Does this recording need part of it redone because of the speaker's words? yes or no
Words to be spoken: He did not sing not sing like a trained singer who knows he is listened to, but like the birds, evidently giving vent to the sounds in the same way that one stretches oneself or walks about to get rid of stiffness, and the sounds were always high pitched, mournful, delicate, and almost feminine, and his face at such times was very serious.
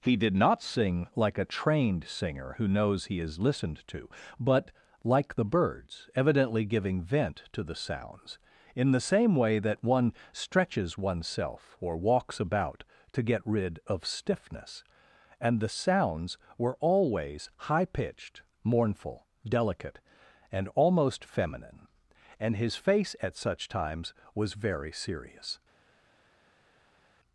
yes